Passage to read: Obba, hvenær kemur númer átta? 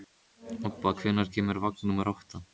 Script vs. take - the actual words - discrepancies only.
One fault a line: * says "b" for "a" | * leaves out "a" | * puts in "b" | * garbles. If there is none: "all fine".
* puts in "vagn"